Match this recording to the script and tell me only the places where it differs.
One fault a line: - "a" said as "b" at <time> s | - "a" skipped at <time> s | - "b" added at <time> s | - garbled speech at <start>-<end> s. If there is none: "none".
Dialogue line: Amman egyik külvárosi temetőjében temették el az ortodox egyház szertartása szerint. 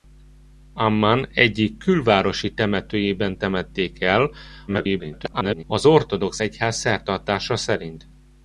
- garbled speech at 4.7-5.6 s